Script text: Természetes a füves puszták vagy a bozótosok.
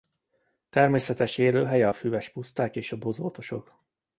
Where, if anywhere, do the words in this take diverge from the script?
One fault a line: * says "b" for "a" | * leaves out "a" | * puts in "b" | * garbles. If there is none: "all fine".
* puts in "élőhelye"
* says "és" for "vagy"